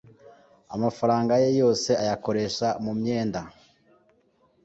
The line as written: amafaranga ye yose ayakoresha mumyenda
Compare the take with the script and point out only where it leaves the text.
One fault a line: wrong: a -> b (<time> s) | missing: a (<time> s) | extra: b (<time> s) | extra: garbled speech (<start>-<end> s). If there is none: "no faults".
no faults